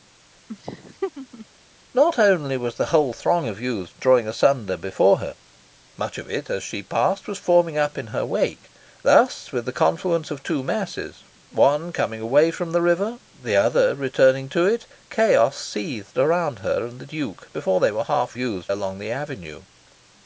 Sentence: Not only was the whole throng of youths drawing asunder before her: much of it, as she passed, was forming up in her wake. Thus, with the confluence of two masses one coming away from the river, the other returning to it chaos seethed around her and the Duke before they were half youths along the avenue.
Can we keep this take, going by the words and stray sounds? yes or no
no